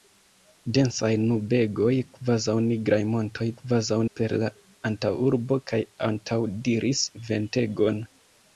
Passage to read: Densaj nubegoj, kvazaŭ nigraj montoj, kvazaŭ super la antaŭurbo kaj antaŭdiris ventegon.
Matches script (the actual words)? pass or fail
pass